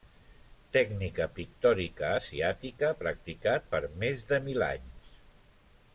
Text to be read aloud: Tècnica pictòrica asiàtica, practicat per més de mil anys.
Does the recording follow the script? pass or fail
pass